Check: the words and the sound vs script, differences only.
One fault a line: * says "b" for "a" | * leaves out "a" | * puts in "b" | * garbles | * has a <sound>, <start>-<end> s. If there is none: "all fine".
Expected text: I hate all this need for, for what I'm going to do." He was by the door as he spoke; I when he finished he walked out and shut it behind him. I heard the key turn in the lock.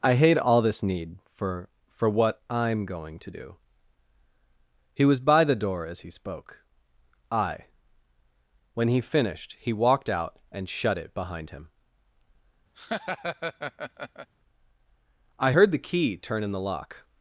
* has a laugh, 12.7-14.3 s